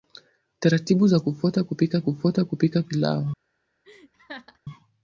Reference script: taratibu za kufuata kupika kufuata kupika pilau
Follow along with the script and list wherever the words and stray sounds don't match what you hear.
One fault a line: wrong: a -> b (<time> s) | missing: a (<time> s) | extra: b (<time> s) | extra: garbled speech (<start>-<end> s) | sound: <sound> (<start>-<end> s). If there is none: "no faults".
sound: laugh (3.8-4.6 s)